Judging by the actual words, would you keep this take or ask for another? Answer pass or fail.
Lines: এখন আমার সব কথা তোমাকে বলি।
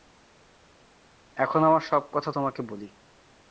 pass